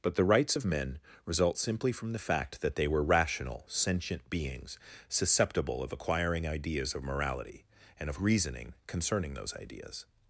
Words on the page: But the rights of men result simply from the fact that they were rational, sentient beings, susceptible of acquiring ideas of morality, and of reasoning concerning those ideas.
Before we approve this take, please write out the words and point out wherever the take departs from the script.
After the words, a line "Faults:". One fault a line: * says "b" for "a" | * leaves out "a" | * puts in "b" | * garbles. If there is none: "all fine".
But the rights of men result simply from the fact that they were rational, sentient beings, susceptible of acquiring ideas of morality, and of reasoning concerning those ideas.
Faults:
all fine